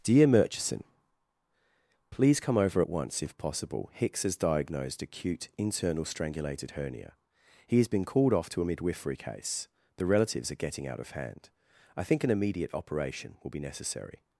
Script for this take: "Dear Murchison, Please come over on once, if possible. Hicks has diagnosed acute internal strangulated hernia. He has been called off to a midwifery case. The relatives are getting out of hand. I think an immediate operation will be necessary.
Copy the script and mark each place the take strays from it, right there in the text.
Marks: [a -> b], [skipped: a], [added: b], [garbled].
"Dear Murchison, Please come over [on -> at] once, if possible. Hicks has diagnosed acute internal strangulated hernia. He has been called off to a midwifery case. The relatives are getting out of hand. I think an immediate operation will be necessary.